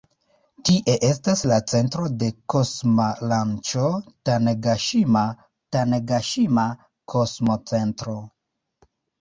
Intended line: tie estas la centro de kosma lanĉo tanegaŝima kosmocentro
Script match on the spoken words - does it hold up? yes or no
no